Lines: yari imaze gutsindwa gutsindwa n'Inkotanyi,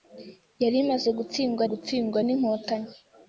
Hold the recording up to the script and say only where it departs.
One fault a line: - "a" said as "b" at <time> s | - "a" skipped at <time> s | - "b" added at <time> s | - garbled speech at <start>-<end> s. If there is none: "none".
none